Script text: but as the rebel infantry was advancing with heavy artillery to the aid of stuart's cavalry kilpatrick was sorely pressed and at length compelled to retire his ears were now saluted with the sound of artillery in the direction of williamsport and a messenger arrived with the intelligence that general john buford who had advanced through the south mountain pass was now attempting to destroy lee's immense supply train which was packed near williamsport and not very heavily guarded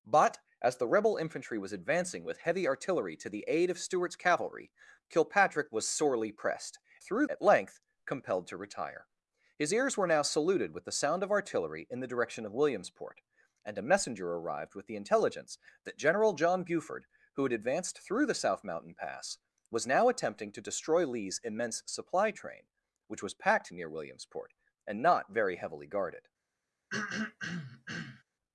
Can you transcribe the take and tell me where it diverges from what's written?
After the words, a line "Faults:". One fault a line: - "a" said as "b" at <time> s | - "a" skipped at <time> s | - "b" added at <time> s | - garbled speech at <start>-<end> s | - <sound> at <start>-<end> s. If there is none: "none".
but as the rebel infantry was advancing with heavy artillery to the aid of stuart's cavalry kilpatrick was sorely pressed through at length compelled to retire his ears were now saluted with the sound of artillery in the direction of williamsport and a messenger arrived with the intelligence that general john buford who had advanced through the south mountain pass was now attempting to destroy lee's immense supply train which was packed near williamsport and not very heavily guarded
Faults:
- "and" said as "through" at 7.0 s
- throat clearing at 26.9-28.2 s